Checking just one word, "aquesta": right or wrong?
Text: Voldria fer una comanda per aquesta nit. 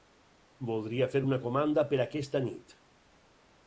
right